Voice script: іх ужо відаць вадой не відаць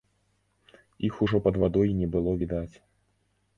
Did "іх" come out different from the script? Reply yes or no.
no